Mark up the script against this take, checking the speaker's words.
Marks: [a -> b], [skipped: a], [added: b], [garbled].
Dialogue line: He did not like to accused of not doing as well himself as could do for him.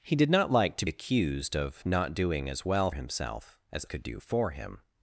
He did not like to accused of not doing as well himself as could do for him.